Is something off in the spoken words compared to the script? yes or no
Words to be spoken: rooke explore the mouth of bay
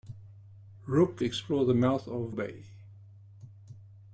no